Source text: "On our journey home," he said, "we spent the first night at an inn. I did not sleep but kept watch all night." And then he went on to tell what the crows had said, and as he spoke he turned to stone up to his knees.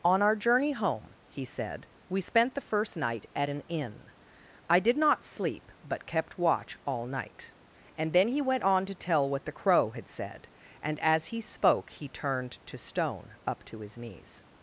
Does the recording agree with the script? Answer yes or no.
no